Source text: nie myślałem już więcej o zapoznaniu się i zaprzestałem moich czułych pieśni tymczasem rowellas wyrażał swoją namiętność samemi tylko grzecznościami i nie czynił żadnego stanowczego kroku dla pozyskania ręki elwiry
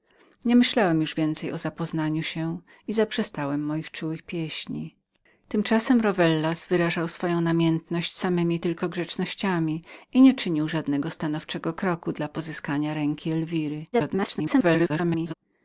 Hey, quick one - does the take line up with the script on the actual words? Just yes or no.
no